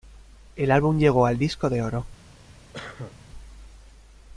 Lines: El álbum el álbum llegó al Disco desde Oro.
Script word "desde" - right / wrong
wrong